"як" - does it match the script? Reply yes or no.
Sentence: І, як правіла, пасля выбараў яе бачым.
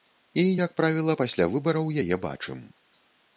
yes